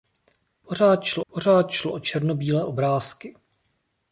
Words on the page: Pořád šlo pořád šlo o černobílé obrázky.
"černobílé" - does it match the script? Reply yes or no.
yes